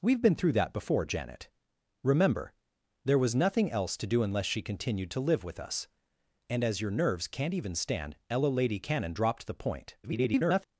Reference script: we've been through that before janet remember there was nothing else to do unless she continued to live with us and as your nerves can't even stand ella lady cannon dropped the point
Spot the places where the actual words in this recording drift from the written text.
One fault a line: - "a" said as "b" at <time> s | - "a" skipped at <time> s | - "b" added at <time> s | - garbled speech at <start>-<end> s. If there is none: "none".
- garbled speech at 10.0-10.7 s